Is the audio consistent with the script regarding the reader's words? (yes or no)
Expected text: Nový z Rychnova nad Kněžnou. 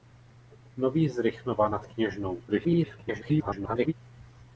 no